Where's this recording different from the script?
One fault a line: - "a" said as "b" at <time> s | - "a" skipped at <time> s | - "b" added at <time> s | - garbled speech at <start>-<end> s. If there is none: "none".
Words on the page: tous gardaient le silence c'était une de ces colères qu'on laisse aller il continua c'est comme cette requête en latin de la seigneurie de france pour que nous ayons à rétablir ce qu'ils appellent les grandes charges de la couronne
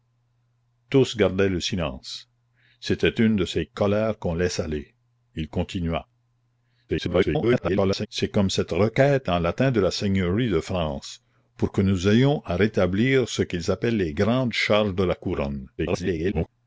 - garbled speech at 6.9-8.1 s
- garbled speech at 15.8-16.5 s